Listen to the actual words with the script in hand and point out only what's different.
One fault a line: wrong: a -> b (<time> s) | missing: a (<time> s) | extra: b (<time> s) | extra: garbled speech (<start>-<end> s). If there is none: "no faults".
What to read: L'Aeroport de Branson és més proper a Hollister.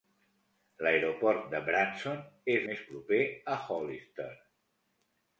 no faults